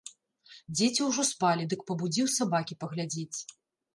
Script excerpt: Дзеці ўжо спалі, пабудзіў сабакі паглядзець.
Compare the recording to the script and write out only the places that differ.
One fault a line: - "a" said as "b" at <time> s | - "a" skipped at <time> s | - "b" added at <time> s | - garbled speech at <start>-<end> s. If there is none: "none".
- "дык" added at 1.7 s